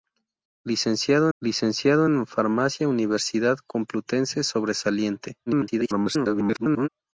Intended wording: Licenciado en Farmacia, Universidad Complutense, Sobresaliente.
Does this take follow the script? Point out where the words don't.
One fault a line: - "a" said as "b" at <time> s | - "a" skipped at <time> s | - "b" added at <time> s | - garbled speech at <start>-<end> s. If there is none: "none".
- "licenciado" added at 1.4 s
- garbled speech at 5.5-6.9 s